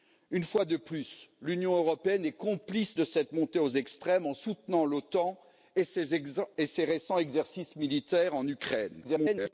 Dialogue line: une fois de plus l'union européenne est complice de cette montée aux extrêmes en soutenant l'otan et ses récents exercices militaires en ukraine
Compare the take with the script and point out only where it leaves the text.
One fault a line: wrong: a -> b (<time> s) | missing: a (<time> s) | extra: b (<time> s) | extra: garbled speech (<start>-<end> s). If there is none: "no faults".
extra: garbled speech (9.0-9.5 s)